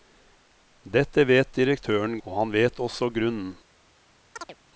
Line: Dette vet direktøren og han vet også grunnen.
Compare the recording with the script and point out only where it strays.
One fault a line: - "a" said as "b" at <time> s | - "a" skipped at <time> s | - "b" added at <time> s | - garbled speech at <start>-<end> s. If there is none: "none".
none